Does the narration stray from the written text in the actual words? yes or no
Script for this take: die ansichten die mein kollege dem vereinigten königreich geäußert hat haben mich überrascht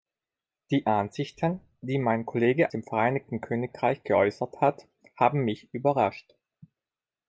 no